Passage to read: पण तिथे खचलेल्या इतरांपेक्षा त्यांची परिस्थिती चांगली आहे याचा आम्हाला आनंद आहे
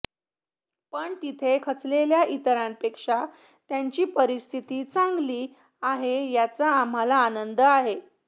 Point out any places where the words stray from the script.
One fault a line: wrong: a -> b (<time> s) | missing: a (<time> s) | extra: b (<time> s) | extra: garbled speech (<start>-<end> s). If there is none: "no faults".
no faults